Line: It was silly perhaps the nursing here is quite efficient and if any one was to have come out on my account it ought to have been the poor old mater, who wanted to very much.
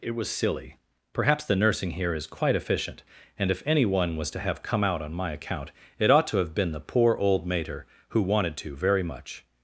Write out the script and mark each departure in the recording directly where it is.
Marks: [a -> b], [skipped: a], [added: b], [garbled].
It was silly perhaps the nursing here is quite efficient and if any one was to have come out on my account it ought to have been the poor old mater, who wanted to very much.